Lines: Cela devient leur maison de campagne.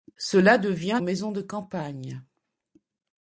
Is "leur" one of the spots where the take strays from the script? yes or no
yes